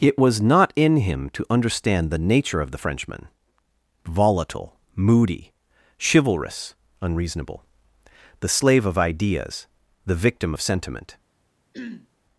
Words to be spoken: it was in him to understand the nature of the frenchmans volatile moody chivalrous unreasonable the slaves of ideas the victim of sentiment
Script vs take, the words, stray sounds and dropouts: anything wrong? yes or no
yes